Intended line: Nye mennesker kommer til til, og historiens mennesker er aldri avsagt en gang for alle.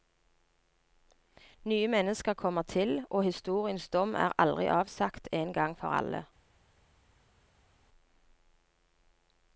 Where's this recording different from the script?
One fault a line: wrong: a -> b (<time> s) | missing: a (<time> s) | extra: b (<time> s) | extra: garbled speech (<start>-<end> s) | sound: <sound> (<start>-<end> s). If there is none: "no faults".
missing: til (3.0 s)
wrong: mennesker -> dom (3.9 s)